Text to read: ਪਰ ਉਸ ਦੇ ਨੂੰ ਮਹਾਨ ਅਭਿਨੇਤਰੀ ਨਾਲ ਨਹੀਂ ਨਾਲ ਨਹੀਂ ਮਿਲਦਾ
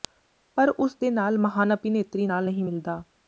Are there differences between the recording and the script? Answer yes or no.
yes